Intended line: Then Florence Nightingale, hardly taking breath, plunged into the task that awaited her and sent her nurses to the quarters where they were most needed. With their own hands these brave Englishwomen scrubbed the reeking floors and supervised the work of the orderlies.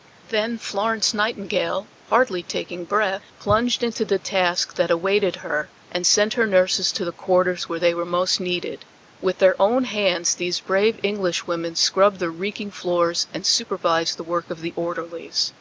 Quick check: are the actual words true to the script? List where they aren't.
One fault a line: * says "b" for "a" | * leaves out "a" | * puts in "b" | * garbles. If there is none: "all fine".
all fine